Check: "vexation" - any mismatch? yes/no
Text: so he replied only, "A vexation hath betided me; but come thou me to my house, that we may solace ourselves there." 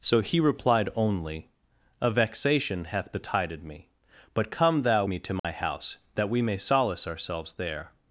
no